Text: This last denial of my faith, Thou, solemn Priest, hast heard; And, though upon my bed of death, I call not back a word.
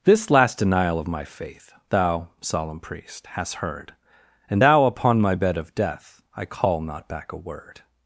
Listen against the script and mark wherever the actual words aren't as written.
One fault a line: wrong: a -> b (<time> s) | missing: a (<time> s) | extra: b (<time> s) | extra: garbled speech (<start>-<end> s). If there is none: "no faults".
wrong: though -> thou (4.6 s)